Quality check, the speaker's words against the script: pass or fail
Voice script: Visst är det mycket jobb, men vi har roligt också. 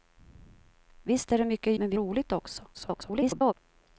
fail